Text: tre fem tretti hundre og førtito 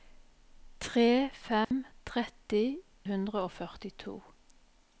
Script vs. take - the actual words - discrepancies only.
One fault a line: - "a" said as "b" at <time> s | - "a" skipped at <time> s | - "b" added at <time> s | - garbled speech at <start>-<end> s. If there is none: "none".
none